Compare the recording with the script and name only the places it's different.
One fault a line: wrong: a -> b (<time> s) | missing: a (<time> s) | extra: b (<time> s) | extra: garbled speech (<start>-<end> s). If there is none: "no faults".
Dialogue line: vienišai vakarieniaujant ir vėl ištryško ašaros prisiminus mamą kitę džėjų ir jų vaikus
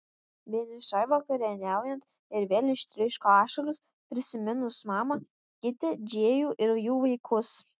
no faults